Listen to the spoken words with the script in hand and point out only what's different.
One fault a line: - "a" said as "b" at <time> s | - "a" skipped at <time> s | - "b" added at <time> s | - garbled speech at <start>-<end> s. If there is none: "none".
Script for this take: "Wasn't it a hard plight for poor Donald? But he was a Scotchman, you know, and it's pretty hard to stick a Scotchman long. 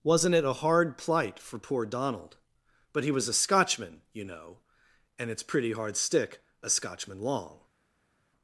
- "to" skipped at 6.0 s